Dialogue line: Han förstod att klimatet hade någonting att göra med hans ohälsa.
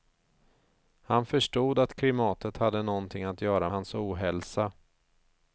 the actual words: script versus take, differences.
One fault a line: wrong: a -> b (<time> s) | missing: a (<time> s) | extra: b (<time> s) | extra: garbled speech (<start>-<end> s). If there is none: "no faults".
missing: med (3.7 s)